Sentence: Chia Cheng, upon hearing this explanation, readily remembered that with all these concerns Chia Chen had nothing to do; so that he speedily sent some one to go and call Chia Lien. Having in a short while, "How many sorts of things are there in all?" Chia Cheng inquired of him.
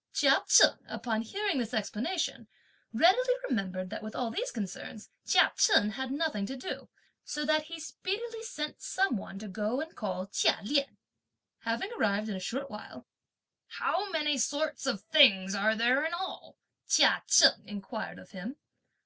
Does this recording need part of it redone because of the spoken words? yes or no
yes